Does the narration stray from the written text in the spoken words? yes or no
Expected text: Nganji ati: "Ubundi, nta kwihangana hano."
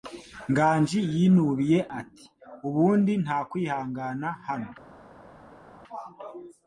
yes